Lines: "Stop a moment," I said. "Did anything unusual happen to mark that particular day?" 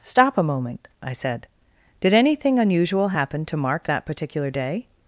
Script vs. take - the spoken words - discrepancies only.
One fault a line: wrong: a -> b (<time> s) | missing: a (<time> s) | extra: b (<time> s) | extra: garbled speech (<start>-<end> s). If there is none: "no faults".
no faults